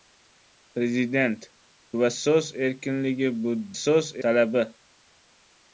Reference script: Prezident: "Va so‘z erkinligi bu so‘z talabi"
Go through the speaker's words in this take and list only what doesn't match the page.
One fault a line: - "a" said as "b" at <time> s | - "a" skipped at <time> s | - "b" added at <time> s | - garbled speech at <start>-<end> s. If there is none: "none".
none